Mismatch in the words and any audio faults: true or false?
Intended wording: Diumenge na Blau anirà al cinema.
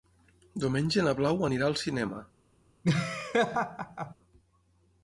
true